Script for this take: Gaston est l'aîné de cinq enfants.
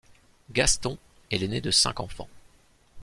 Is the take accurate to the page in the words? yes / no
yes